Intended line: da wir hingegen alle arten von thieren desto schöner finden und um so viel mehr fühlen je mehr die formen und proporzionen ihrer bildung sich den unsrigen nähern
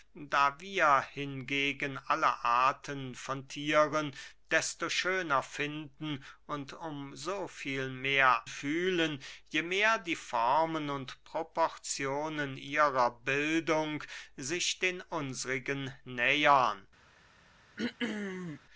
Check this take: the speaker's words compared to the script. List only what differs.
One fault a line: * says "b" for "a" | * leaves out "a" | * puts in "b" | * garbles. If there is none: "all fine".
all fine